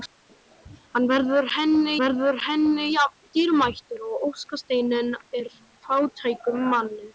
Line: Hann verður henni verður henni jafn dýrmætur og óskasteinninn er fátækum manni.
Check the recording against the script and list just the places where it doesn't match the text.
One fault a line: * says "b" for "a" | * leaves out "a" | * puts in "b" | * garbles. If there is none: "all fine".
all fine